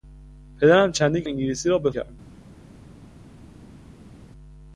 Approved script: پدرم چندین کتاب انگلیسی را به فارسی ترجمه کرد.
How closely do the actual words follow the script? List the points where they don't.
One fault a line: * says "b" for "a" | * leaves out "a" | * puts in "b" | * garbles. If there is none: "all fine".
* leaves out "کتاب"
* leaves out "فارسی ترجمه"